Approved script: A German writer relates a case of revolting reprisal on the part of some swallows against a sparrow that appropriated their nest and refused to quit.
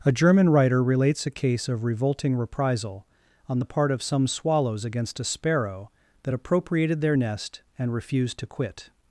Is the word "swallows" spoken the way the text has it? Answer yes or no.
yes